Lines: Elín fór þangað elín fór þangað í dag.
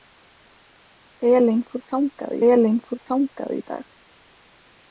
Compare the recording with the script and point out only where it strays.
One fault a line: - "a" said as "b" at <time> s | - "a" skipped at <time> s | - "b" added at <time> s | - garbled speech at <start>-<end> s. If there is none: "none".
none